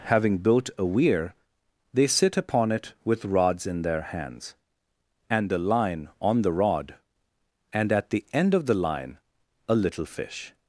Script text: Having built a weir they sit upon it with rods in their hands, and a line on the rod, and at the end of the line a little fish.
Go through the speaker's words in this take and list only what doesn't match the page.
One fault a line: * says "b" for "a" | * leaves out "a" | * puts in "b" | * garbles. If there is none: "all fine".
all fine